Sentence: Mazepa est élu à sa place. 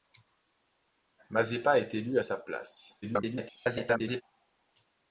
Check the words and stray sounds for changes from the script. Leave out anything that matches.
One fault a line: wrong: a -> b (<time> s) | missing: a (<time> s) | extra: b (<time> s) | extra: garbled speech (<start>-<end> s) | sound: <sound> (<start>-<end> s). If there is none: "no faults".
extra: garbled speech (3.0-4.2 s)